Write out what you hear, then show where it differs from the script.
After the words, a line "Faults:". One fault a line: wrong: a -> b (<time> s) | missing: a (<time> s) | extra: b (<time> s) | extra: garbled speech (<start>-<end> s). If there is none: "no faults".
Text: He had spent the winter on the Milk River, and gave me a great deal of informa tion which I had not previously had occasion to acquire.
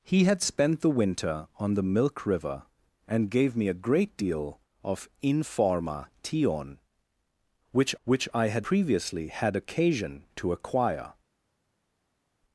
He had spent the winter on the Milk River, and gave me a great deal of informa tion which which I had previously had occasion to acquire.
Faults:
extra: which (8.0 s)
missing: not (8.7 s)